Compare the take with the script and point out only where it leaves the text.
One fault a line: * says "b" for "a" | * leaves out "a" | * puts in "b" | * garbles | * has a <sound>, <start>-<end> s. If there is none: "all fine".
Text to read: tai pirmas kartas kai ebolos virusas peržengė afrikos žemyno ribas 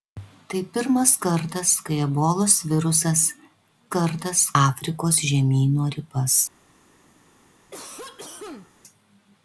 * says "kartas" for "peržengė"
* has a cough, 7.7-8.7 s